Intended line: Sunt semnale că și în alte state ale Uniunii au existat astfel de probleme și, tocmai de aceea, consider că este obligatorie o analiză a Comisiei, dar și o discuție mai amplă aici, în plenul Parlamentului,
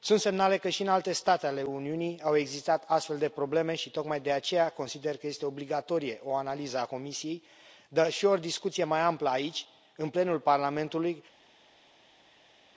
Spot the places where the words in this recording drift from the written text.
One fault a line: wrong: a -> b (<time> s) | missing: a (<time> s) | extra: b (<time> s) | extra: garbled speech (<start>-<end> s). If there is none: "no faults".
no faults